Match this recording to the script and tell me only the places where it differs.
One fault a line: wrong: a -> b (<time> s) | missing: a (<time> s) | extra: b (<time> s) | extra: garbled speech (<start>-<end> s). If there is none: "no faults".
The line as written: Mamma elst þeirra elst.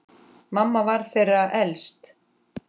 wrong: elst -> var (0.9 s)